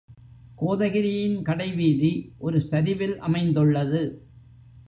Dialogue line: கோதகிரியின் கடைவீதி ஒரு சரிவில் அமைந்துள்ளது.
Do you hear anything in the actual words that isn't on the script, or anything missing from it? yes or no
no